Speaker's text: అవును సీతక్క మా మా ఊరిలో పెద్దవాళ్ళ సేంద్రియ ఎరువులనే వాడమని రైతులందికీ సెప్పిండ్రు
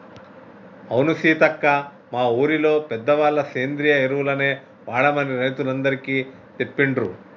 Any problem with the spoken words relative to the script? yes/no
yes